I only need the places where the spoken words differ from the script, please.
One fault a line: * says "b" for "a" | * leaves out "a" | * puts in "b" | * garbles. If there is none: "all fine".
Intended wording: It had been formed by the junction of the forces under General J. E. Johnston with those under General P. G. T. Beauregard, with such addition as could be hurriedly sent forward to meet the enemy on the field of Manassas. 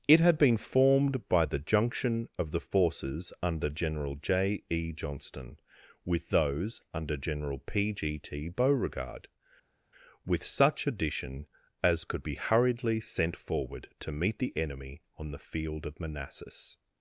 all fine